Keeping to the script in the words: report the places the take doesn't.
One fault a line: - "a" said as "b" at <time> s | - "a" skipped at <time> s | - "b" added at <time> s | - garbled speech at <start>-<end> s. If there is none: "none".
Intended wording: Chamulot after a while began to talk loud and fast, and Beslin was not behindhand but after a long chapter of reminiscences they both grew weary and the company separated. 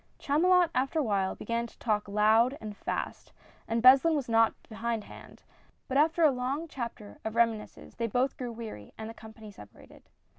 none